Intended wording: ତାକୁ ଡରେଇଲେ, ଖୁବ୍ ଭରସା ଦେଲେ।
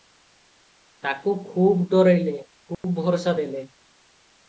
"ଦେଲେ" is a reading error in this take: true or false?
false